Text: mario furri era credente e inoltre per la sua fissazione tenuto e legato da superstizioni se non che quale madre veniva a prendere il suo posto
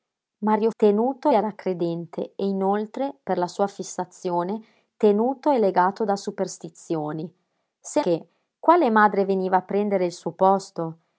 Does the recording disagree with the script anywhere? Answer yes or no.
yes